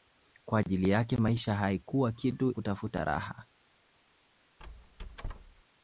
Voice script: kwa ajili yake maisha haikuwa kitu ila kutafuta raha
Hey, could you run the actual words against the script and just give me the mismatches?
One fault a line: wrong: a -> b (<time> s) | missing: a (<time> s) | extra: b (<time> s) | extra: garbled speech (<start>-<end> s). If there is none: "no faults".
missing: ila (2.5 s)